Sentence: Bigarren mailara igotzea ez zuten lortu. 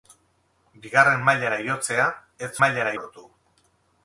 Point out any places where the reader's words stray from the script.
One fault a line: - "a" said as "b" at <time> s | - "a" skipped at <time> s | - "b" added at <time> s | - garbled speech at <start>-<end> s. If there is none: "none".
- "zuten" said as "mailara" at 2.6 s